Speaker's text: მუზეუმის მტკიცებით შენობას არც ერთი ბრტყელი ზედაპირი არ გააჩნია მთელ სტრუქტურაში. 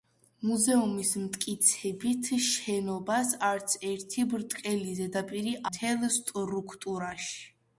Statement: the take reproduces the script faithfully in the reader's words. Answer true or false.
false